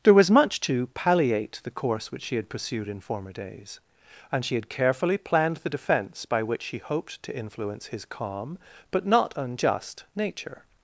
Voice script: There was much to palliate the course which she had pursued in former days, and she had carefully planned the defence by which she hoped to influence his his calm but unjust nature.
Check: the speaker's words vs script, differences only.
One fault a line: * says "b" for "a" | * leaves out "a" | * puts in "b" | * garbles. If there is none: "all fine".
* leaves out "his"
* puts in "not"